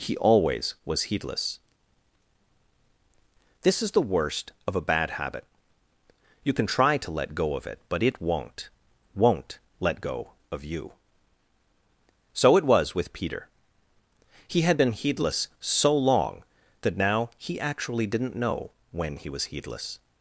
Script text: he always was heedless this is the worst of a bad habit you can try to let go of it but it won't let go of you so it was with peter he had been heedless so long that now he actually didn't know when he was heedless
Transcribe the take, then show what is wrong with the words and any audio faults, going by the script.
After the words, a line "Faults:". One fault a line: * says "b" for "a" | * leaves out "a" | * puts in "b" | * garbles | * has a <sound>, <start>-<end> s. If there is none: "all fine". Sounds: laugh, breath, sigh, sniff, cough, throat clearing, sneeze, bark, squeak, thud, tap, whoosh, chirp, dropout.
he always was heedless this is the worst of a bad habit you can try to let go of it but it won't won't let go of you so it was with peter he had been heedless so long that now he actually didn't know when he was heedless
Faults:
* puts in "won't"